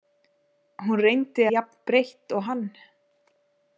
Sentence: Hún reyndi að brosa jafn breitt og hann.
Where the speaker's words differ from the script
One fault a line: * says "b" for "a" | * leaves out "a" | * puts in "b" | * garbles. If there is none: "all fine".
* leaves out "að brosa"